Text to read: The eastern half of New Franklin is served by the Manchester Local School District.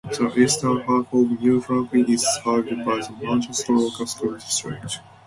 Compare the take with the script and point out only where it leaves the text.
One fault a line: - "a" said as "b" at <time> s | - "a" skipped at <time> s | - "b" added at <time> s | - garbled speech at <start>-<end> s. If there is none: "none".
none